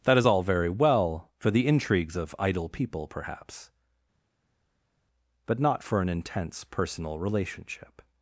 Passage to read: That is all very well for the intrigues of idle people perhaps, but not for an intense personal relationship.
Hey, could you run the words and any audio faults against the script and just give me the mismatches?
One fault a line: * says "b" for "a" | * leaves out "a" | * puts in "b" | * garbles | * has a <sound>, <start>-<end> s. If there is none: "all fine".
all fine